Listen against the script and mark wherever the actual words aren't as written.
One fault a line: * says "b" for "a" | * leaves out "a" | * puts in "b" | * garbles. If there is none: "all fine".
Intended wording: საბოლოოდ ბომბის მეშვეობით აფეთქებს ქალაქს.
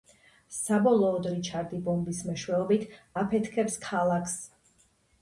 * puts in "რიჩარდი"